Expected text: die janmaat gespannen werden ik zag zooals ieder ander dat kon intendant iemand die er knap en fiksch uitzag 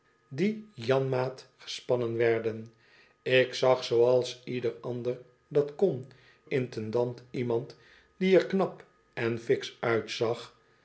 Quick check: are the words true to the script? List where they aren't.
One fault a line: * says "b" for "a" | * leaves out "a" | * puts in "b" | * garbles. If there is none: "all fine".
all fine